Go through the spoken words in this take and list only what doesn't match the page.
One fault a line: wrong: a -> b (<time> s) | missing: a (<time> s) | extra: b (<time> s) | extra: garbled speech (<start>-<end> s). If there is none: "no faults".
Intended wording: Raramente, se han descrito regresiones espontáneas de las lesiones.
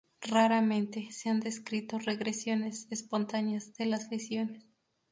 no faults